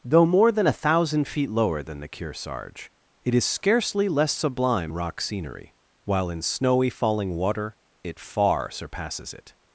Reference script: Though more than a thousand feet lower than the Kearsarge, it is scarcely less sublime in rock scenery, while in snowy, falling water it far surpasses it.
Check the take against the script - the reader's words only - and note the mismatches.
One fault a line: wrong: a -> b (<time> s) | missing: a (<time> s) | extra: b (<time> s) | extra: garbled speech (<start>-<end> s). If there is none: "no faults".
missing: in (4.9 s)